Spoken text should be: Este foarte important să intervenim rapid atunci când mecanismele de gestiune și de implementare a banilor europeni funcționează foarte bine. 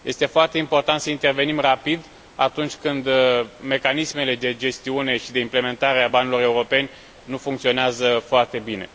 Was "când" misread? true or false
false